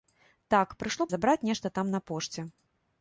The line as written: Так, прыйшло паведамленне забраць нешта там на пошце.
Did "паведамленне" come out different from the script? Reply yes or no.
yes